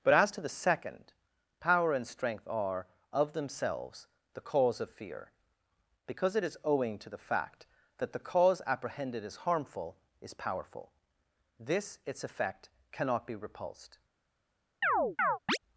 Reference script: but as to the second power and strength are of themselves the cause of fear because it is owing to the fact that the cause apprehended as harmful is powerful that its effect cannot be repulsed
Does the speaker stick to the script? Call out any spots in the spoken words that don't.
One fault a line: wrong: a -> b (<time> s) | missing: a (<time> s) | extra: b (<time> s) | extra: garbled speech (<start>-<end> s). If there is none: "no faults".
wrong: that -> this (11.6 s)